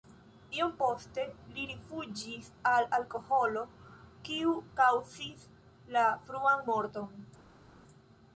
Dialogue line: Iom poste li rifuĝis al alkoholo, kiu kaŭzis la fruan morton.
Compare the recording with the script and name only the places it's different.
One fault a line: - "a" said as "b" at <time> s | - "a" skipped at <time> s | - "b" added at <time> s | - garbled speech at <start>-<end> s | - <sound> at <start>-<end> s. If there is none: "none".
none